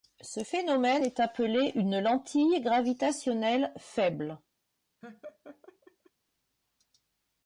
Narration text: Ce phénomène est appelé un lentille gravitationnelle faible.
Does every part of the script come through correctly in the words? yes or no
no